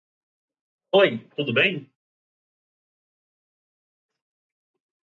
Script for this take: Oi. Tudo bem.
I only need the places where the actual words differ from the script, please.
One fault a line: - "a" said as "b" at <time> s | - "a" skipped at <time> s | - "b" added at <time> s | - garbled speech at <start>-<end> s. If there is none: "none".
none